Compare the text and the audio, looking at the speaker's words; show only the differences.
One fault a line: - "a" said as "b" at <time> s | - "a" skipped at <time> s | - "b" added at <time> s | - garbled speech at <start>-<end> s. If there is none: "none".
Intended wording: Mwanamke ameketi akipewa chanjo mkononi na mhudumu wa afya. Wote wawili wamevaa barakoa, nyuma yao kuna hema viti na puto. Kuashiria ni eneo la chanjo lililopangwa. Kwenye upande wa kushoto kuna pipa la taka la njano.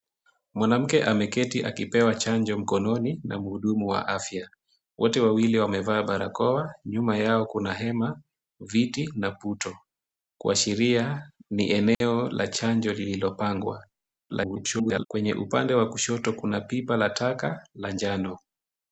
- garbled speech at 14.3-15.1 s